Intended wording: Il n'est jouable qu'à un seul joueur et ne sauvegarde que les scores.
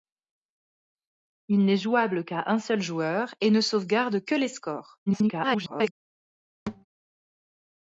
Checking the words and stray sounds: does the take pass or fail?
fail